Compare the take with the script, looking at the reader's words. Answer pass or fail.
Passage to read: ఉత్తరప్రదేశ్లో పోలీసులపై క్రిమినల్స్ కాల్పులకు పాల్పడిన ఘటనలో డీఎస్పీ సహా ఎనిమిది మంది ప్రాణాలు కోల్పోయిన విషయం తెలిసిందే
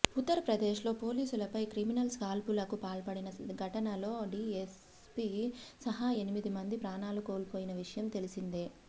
pass